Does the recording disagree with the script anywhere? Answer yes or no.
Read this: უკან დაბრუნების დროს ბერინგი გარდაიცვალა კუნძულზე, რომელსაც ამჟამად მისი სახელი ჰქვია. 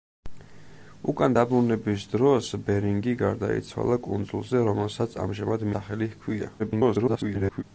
yes